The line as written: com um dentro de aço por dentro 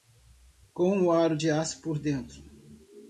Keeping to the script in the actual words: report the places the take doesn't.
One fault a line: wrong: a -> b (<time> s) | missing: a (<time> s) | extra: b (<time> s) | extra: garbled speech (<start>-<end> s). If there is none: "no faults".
wrong: dentro -> aro (1.1 s)